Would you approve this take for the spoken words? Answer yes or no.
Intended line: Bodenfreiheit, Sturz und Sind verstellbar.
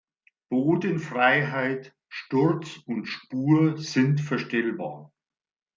no